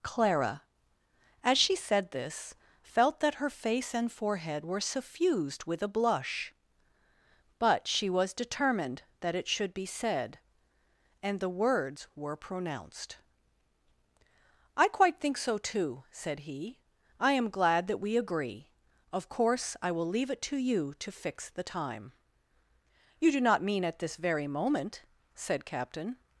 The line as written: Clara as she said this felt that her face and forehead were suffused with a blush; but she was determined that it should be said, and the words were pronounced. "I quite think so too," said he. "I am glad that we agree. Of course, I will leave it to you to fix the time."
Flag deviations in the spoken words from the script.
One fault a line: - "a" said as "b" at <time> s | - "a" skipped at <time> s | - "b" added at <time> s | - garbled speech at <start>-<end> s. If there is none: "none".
- "You do not mean at this very moment said Captain" added at 23.2 s